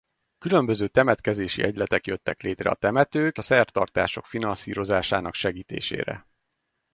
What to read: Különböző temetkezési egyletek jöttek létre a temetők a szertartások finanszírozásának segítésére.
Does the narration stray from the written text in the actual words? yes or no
no